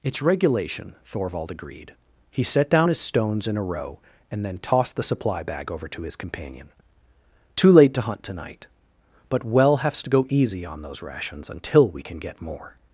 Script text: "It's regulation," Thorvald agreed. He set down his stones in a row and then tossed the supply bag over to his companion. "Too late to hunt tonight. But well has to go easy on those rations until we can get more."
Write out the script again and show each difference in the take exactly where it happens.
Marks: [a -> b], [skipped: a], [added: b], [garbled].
"It's regulation," Thorvald agreed. He set down his stones in a row and then tossed the supply bag over to his companion. "Too late to hunt tonight. But well has to go easy on those rations until we can get more."